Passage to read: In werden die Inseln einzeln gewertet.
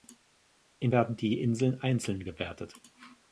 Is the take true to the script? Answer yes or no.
yes